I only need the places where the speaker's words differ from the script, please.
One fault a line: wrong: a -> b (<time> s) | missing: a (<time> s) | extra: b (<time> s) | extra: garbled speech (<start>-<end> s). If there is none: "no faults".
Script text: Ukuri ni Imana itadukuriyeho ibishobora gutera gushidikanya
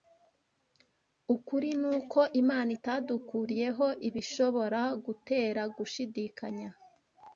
extra: uko (2.0 s)